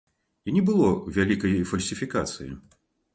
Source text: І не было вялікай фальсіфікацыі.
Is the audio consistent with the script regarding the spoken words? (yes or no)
yes